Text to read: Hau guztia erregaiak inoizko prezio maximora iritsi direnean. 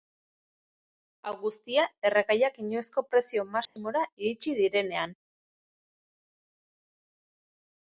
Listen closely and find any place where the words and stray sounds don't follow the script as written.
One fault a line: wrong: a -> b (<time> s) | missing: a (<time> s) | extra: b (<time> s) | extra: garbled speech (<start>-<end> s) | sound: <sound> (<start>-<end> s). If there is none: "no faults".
sound: dropout (3.7-3.8 s)